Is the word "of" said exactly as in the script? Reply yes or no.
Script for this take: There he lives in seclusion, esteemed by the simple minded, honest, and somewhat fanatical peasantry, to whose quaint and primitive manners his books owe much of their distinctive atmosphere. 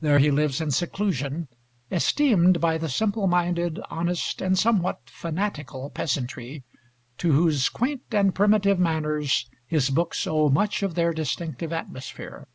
yes